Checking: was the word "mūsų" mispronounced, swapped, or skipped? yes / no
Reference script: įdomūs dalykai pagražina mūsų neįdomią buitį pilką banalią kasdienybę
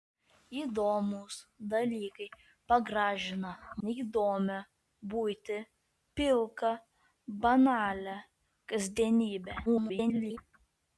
yes